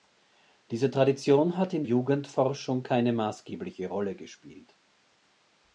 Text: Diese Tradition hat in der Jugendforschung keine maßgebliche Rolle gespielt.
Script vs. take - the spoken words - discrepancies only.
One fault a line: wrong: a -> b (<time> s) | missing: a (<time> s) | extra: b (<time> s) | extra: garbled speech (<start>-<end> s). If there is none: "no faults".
missing: der (1.8 s)